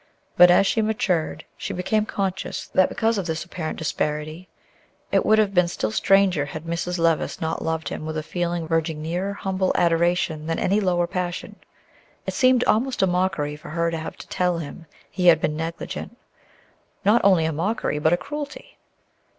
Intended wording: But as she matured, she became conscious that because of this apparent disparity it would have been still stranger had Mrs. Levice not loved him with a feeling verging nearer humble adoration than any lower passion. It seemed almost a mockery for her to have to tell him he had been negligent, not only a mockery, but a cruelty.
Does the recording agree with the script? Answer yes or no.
yes